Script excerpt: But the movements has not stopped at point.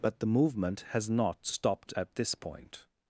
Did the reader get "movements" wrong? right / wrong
wrong